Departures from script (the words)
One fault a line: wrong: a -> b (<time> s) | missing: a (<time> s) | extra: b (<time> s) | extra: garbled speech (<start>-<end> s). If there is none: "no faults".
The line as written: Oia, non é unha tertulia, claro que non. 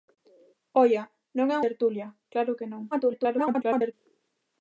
missing: unha (1.6 s)
extra: garbled speech (2.9-3.9 s)